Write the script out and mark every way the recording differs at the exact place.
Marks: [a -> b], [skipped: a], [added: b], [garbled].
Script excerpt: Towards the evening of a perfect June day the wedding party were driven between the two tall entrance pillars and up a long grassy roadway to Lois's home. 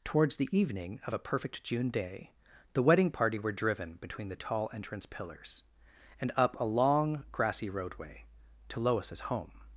Towards the evening of a perfect June day the wedding party were driven between the [skipped: two] tall entrance pillars and up a long grassy roadway to Lois's home.